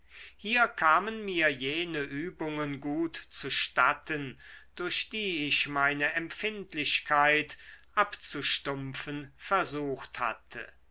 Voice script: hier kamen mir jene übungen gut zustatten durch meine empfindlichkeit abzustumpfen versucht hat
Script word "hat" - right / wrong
wrong